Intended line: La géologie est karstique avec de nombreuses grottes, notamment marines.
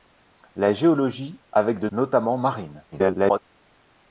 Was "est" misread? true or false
true